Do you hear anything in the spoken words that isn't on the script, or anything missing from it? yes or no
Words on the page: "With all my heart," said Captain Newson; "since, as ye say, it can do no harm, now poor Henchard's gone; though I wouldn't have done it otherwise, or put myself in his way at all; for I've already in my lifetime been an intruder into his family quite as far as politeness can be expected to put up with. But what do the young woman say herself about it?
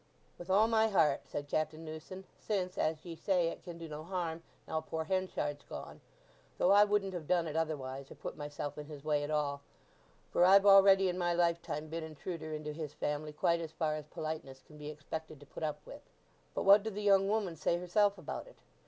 yes